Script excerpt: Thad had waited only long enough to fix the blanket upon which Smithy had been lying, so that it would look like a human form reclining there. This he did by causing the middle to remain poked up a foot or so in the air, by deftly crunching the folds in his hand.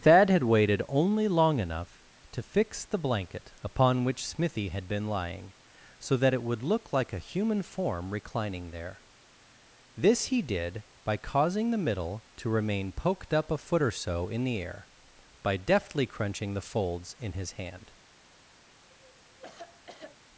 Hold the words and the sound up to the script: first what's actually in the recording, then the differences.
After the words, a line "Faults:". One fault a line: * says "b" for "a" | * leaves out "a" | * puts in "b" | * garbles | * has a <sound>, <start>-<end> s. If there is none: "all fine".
Thad had waited only long enough to fix the blanket upon which Smithy had been lying, so that it would look like a human form reclining there. This he did by causing the middle to remain poked up a foot or so in the air, by deftly crunching the folds in his hand.
Faults:
* has a cough, 18.9-20.2 s